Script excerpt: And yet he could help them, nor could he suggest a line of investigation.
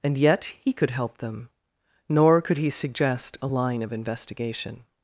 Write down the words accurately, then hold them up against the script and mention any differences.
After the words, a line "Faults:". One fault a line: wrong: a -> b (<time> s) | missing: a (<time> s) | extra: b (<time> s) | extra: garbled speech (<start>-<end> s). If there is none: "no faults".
And yet he could help them, nor could he suggest a line of investigation.
Faults:
no faults